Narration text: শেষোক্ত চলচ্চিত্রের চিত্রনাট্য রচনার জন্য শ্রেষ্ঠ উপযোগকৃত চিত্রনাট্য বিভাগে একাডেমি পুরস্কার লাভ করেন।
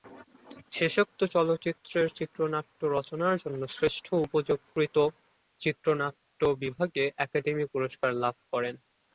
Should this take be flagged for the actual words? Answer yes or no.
no